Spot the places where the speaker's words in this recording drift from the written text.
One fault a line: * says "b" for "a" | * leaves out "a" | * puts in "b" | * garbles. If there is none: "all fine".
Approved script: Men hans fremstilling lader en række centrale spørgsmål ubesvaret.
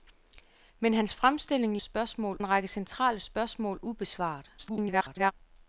* says "spørgsmål" for "lader"
* garbles